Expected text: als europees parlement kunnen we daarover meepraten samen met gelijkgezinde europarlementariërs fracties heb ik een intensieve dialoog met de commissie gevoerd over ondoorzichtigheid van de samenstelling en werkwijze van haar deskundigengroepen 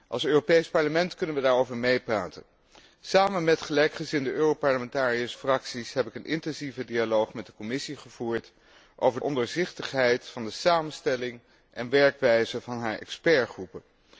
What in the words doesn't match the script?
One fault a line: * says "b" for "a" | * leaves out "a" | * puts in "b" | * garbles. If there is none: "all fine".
all fine